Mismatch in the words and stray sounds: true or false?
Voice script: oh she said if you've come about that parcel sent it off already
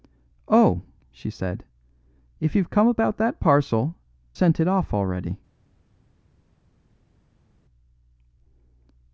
false